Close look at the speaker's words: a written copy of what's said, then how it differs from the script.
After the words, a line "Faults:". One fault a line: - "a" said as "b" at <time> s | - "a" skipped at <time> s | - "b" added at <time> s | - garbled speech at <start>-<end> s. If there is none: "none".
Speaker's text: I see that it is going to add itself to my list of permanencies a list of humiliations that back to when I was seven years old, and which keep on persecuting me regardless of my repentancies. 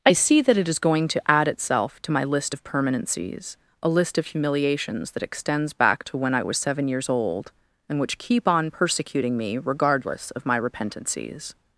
I see that it is going to add itself to my list of permanencies a list of humiliations that extends back to when I was seven years old, and which keep on persecuting me regardless of my repentancies.
Faults:
- "extends" added at 5.2 s